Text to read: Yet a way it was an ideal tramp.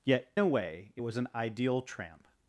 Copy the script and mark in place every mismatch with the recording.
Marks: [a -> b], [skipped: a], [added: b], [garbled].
Yet a way it was an ideal tramp.